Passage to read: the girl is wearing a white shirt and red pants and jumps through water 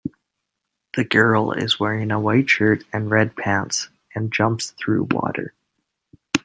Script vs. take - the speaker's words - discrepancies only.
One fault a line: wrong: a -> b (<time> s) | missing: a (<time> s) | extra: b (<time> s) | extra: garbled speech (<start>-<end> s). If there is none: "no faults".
no faults